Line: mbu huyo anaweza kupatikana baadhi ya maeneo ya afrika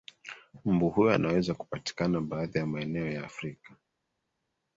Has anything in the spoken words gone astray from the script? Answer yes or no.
no